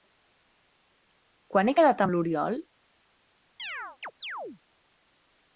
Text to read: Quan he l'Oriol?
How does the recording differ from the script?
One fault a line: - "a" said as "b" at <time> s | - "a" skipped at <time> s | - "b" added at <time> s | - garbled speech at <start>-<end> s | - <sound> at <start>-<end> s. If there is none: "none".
- "quedat amb" added at 1.8 s
- chirp at 3.6-4.6 s